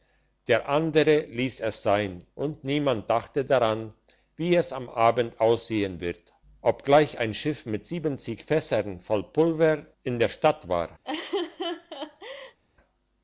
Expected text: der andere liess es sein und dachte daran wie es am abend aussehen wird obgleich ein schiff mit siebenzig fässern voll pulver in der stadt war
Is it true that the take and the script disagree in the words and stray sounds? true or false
true